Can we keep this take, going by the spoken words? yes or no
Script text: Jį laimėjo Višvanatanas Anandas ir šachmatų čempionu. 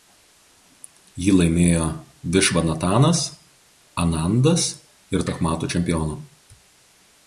yes